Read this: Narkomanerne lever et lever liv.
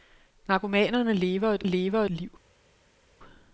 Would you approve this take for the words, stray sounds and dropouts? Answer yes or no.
yes